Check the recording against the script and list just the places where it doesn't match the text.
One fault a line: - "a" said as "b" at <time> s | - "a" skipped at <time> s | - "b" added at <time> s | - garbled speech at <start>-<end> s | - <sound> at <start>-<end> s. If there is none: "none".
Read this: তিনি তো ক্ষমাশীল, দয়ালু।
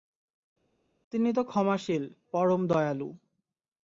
- "পরম" added at 2.3 s